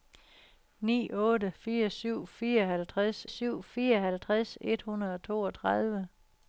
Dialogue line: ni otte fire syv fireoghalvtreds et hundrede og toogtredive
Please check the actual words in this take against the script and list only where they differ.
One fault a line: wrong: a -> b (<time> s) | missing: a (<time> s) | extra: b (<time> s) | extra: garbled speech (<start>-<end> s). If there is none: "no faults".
extra: syv fireoghalvtreds (3.3 s)